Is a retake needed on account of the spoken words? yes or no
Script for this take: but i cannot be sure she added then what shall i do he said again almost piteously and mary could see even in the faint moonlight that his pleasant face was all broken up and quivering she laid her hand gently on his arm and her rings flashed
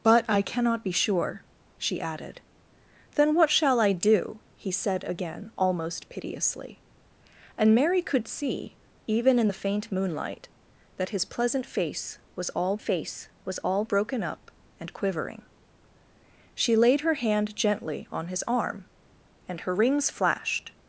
yes